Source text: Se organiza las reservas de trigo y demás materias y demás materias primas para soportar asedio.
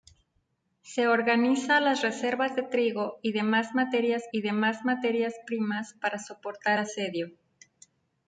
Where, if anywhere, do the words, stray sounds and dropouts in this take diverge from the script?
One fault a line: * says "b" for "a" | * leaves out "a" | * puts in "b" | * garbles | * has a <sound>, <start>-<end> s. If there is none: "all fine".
all fine